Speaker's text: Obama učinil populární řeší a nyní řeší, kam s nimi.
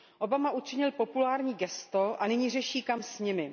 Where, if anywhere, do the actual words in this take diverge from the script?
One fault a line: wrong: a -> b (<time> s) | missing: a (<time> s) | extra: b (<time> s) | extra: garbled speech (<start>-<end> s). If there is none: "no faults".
wrong: řeší -> gesto (1.5 s)